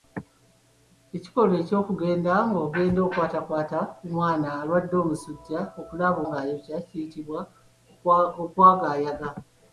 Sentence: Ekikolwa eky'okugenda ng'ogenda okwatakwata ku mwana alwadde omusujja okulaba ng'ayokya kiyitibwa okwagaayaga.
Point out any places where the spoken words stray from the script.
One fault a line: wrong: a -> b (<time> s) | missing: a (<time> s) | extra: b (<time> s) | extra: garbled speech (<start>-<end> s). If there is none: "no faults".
no faults